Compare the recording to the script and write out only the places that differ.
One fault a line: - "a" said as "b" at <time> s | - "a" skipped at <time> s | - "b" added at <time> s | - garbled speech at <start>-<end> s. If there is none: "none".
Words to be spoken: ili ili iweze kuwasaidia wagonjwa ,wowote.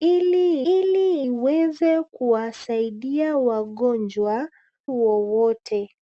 none